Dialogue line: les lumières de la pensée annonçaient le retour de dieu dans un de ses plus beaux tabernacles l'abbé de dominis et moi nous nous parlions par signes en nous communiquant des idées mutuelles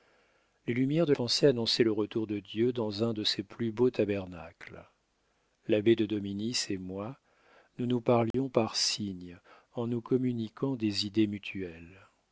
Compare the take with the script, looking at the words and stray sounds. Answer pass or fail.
fail